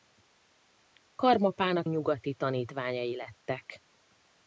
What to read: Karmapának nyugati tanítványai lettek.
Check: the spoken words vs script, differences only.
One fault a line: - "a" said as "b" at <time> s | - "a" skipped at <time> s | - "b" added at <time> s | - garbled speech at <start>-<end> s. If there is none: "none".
none